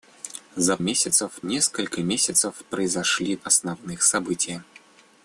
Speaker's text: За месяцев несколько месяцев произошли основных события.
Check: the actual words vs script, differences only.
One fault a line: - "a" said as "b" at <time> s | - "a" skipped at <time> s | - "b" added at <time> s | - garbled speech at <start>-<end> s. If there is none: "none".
none